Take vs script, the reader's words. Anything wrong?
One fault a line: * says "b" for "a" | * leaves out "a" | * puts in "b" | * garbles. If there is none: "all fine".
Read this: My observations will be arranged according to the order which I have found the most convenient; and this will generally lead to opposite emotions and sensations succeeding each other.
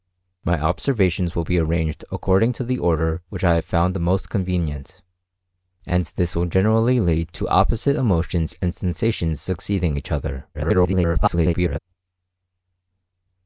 * garbles